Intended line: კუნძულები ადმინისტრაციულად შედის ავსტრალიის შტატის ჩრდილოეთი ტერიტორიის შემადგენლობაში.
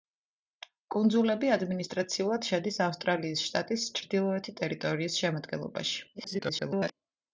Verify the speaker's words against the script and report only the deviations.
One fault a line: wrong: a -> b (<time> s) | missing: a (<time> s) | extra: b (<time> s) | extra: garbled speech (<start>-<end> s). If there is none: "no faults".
extra: garbled speech (6.1-6.9 s)